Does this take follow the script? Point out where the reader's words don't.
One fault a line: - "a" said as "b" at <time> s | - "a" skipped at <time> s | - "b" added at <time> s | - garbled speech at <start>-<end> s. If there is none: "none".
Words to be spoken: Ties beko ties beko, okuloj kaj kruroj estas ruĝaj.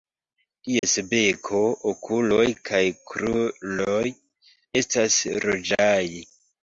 - "ties beko" skipped at 1.6 s